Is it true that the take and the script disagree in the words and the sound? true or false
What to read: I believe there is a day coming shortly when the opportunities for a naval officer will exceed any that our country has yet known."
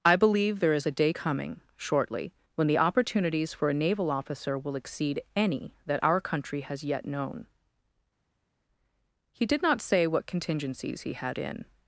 true